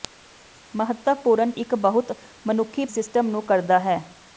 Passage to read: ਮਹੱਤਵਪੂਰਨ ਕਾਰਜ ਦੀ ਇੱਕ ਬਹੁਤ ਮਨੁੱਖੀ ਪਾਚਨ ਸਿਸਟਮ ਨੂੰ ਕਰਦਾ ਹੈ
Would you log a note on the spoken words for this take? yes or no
yes